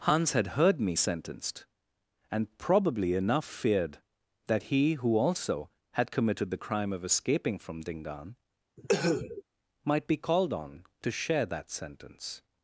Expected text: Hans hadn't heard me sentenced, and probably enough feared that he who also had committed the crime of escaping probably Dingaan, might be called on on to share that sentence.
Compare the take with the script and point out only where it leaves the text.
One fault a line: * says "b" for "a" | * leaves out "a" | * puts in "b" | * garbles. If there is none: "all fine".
* says "had" for "hadn't"
* says "from" for "probably"
* leaves out "on"